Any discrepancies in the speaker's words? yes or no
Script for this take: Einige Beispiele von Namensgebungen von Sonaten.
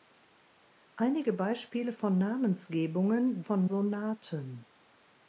no